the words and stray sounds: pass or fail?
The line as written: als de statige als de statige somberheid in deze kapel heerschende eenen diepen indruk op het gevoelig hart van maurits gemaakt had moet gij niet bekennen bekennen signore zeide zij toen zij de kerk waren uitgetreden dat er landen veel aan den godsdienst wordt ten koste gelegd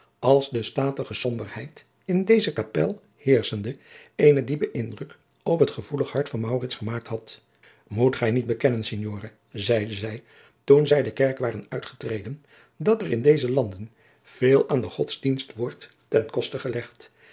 fail